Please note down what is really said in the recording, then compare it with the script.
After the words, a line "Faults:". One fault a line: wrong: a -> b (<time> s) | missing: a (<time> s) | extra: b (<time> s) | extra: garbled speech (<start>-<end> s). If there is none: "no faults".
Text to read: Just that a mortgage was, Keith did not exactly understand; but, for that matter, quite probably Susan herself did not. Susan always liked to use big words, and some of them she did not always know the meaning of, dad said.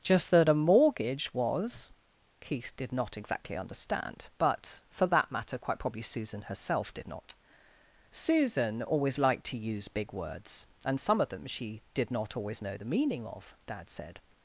Just that a mortgage was, Keith did not exactly understand; but, for that matter, quite probably Susan herself did not. Susan always liked to use big words, and some of them she did not always know the meaning of, dad said.
Faults:
no faults